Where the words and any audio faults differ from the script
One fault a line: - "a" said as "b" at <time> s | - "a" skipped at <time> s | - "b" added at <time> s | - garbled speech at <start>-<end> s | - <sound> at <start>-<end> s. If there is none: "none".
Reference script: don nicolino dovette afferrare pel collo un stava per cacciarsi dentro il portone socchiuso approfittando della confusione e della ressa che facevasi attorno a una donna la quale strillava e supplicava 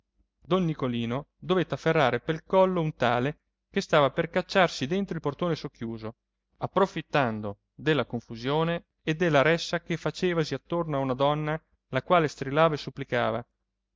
- "tale che" added at 3.0 s